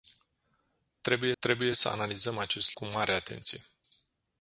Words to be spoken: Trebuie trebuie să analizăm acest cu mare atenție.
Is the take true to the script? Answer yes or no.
yes